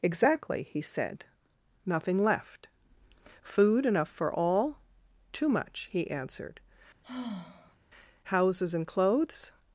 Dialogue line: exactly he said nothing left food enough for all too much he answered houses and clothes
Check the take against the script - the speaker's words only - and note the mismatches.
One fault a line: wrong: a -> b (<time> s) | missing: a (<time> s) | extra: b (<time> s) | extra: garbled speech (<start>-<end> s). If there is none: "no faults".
no faults